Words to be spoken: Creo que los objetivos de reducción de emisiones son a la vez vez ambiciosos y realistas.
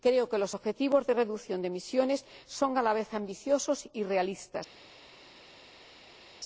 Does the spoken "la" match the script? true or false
true